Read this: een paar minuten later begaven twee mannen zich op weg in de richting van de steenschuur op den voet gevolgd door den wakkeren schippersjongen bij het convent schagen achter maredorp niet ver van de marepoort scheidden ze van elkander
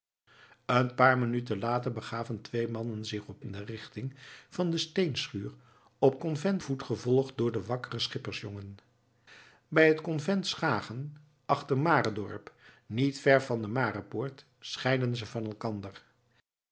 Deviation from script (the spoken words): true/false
true